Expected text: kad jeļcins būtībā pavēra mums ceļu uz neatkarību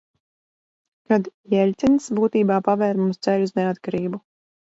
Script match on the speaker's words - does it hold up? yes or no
yes